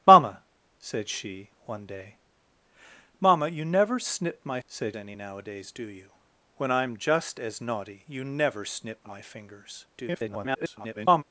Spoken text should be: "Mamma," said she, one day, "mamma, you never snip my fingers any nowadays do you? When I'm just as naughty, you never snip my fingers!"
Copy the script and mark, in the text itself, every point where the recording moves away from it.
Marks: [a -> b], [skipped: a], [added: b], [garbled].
"Mamma," said she, one day, "mamma, you never snip my [fingers -> said] any nowadays do you? When I'm just as naughty, you never snip my fingers!" [garbled]